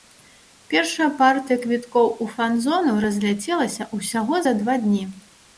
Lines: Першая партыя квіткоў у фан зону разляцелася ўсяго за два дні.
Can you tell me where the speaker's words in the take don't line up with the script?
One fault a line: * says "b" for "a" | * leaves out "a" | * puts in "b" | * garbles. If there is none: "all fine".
all fine